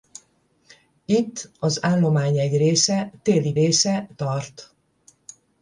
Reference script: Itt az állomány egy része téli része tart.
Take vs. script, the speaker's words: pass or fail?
pass